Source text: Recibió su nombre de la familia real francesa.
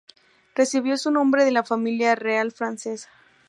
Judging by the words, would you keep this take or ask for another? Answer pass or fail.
pass